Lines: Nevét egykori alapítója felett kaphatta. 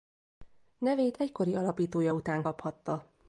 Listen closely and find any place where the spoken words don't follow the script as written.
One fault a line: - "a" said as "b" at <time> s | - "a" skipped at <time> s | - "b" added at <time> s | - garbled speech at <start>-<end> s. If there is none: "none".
- "felett" said as "után" at 2.1 s